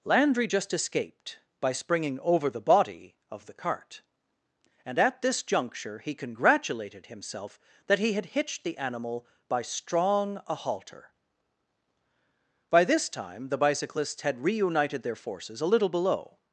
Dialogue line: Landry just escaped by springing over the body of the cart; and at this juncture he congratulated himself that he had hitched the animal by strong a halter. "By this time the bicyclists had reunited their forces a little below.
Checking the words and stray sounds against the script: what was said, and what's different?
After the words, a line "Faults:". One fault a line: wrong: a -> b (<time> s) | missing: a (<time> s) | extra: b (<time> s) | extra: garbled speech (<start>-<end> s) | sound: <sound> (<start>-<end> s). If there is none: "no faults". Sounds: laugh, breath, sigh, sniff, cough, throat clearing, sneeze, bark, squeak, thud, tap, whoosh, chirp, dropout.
Landry just escaped by springing over the body of the cart; and at this juncture he congratulated himself that he had hitched the animal by strong a halter. "By this time the bicyclists had reunited their forces a little below.
Faults:
no faults